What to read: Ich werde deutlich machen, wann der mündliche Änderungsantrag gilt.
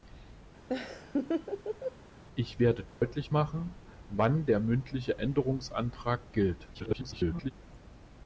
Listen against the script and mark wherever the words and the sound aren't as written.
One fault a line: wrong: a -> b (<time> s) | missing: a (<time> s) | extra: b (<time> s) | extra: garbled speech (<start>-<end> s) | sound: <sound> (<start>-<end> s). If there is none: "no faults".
sound: laugh (0.7-2.0 s)
sound: dropout (2.9-3.0 s)
extra: garbled speech (6.7-7.5 s)